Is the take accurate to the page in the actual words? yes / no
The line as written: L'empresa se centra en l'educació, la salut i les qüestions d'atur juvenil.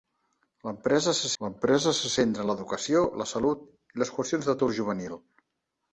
no